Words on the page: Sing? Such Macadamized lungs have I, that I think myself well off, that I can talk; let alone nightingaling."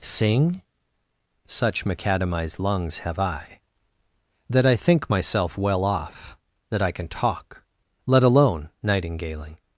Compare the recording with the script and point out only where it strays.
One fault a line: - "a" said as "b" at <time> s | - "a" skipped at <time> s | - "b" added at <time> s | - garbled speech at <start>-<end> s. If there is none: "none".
none